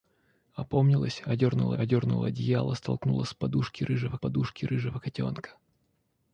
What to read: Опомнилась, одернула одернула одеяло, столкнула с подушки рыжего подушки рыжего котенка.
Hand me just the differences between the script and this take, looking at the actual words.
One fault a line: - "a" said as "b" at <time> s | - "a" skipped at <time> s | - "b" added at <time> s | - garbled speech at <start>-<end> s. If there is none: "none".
none